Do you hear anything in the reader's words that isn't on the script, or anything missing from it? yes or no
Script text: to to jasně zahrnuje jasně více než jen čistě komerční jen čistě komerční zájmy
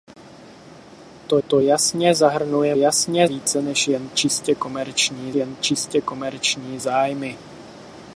no